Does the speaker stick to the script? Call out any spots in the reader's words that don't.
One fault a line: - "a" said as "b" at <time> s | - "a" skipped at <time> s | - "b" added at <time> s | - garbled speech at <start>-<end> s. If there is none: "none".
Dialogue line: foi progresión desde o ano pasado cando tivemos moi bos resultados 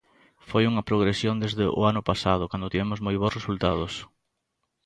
- "unha" added at 0.7 s